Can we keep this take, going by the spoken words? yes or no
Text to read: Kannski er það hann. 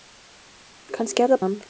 yes